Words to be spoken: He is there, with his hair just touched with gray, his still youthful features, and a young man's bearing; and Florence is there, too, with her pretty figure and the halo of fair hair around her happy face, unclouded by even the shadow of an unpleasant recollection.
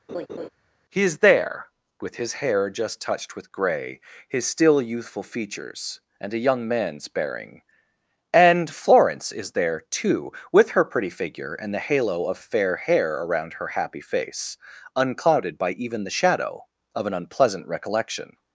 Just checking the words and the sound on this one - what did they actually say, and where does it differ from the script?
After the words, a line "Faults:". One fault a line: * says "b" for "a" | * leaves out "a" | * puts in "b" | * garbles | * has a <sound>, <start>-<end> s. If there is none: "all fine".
He is there, with his hair just touched with gray, his still youthful features, and a young man's bearing; and Florence is there, too, with her pretty figure and the halo of fair hair around her happy face, unclouded by even the shadow of an unpleasant recollection.
Faults:
* has a laugh, 0.1-0.5 s